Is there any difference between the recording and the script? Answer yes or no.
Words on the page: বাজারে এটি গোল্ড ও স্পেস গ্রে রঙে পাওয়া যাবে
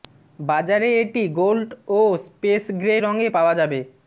no